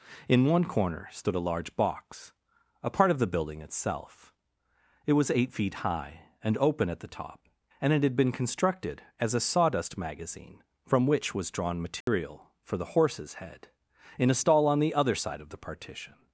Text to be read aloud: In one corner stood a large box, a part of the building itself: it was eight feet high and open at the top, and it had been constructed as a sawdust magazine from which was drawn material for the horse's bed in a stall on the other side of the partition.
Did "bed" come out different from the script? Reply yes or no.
yes